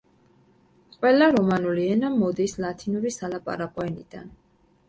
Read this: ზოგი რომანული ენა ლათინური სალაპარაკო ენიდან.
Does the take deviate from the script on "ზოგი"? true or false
true